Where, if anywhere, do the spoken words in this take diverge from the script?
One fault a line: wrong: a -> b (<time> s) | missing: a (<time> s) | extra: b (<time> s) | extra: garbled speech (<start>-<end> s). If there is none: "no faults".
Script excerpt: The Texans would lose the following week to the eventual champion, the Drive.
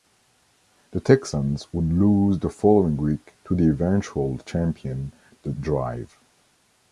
no faults